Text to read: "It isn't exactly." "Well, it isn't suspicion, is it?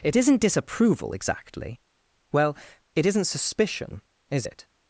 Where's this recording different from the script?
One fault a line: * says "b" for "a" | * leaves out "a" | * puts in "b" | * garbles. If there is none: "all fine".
* puts in "disapproval"